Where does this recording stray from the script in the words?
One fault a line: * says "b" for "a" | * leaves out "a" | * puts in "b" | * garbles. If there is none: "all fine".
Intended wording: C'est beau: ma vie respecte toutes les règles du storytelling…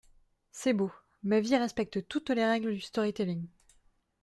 all fine